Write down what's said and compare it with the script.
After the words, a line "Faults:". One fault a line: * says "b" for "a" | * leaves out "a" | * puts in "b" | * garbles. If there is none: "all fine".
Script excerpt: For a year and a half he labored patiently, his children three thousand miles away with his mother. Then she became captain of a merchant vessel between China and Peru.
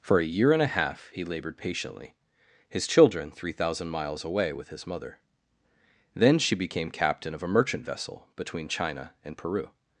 For a year and a half he labored patiently, his children three thousand miles away with his mother. Then she became captain of a merchant vessel between China and Peru.
Faults:
all fine